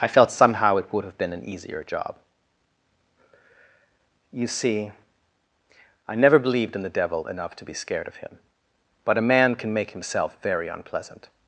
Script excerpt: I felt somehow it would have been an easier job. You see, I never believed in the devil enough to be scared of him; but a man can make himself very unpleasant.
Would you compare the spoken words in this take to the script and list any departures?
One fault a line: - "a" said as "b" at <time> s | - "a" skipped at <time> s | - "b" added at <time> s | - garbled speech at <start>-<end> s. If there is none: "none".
none